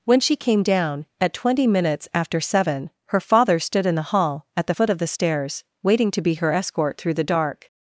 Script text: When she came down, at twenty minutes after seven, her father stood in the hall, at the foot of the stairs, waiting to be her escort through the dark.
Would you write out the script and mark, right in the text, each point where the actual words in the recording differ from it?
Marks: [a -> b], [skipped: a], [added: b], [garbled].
When she came down, at twenty minutes after seven, her father stood in the hall, at the foot of the stairs, waiting to be her escort through the dark.